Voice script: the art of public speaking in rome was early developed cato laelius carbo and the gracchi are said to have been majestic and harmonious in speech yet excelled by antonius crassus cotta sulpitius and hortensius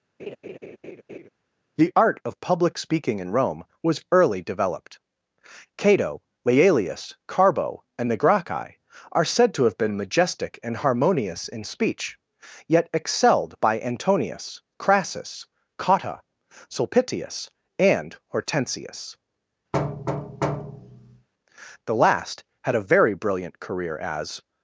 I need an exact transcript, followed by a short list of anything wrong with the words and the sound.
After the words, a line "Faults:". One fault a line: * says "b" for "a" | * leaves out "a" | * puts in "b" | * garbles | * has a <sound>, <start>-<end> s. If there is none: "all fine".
the art of public speaking in rome was early developed cato laelius carbo and the gracchi are said to have been majestic and harmonious in speech yet excelled by antonius crassus cotta sulpitius and hortensius the last had a very brilliant career as
Faults:
* has a laugh, 0.2-1.3 s
* has a thud, 19.7-21.3 s
* puts in "the last had a very brilliant career as"